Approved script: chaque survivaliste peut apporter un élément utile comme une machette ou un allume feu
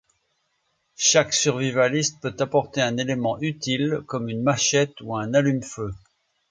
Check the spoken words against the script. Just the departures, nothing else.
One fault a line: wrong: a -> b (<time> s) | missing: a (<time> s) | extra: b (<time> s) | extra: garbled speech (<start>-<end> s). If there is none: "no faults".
no faults